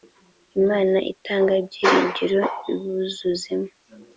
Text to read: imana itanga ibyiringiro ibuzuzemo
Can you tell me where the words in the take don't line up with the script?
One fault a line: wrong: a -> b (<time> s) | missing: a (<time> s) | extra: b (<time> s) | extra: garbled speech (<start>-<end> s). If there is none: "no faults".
no faults